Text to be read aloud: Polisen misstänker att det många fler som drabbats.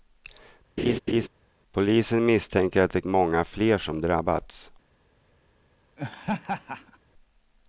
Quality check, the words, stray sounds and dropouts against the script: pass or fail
fail